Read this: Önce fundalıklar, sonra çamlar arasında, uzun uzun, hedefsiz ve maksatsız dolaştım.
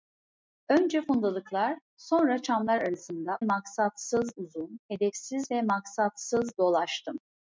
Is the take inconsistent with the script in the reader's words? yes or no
yes